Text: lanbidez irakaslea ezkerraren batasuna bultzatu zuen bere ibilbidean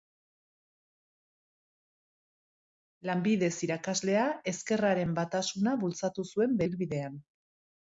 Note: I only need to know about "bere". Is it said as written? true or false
false